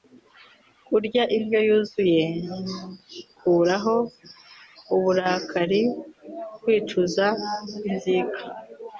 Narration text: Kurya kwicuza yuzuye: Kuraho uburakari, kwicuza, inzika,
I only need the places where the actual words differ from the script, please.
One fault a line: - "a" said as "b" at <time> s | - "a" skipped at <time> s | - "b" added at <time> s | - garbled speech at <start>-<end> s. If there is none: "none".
- "kwicuza" said as "indyo" at 1.4 s